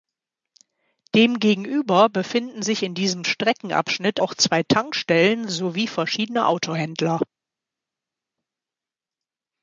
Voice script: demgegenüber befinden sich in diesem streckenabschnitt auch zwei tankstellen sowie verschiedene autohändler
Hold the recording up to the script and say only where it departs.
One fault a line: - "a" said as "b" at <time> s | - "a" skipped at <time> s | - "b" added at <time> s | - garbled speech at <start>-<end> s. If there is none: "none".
none